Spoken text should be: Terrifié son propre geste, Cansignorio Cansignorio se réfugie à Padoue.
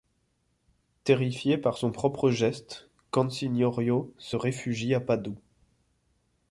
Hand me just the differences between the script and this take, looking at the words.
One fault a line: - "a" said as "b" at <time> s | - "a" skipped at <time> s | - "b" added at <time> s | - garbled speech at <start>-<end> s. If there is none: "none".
- "par" added at 1.6 s
- "Cansignorio" skipped at 4.1 s